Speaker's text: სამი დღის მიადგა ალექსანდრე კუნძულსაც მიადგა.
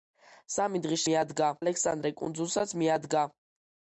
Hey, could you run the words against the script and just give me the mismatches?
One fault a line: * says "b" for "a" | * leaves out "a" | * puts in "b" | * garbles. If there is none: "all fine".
all fine